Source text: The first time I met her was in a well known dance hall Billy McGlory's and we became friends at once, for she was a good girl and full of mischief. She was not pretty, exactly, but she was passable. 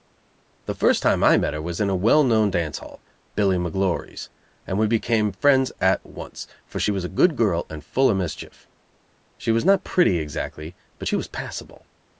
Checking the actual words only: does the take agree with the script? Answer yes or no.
yes